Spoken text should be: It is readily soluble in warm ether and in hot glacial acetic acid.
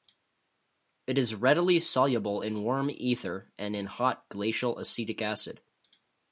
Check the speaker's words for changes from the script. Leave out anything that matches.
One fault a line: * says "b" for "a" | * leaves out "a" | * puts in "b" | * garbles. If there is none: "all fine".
all fine